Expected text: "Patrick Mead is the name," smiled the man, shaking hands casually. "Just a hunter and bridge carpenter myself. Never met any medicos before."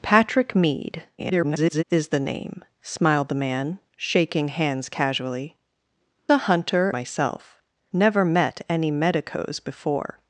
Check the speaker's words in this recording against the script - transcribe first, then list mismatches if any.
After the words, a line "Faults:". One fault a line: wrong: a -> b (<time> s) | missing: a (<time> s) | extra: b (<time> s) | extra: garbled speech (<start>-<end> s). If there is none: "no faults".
"Patrick Mead [garbled] is the name," smiled the man, shaking hands casually. "A hunter myself. Never met any medicos before."
Faults:
extra: garbled speech (1.2-1.8 s)
missing: Just (5.6 s)
missing: and bridge carpenter (6.9 s)